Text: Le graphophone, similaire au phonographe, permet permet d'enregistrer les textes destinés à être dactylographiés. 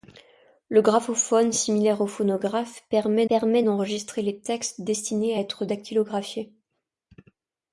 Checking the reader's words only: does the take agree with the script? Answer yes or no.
yes